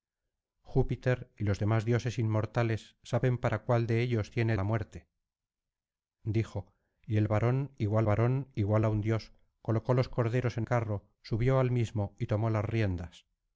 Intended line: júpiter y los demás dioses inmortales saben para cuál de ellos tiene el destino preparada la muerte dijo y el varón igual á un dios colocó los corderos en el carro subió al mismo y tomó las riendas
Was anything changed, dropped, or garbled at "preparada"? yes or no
yes